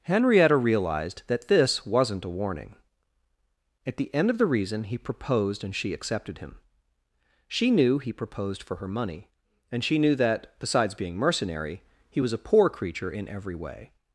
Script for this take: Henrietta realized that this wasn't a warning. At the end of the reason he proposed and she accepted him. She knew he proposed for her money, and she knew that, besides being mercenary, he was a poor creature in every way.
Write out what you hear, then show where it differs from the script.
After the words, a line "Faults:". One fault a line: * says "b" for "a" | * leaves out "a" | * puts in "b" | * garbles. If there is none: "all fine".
Henrietta realized that this wasn't a warning. At the end of the reason he proposed and she accepted him. She knew he proposed for her money, and she knew that, besides being mercenary, he was a poor creature in every way.
Faults:
all fine